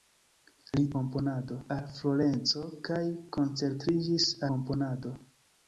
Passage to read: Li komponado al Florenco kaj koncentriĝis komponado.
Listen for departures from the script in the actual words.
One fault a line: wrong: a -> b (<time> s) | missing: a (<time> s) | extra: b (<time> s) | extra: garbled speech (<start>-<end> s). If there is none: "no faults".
no faults